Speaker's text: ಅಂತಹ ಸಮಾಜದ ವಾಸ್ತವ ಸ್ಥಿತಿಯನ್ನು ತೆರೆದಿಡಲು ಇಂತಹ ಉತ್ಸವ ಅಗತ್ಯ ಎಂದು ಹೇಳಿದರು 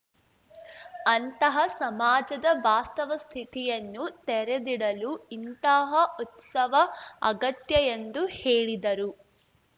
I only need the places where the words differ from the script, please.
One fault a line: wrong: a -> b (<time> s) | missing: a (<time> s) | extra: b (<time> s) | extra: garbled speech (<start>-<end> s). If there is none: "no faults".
no faults